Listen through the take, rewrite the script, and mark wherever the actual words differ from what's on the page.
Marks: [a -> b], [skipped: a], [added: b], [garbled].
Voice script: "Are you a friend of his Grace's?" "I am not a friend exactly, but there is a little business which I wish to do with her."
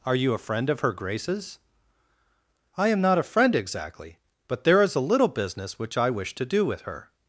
"Are you a friend of [his -> her] Grace's?" "I am not a friend exactly, but there is a little business which I wish to do with her."